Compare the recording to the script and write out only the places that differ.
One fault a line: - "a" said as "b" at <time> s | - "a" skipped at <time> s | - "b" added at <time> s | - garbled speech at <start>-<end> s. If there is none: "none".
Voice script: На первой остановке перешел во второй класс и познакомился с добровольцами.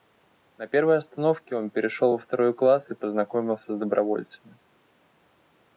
- "он" added at 1.6 s